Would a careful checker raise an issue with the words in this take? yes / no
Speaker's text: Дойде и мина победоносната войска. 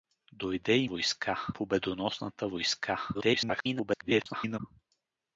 yes